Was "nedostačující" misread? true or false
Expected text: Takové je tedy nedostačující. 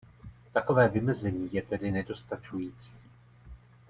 false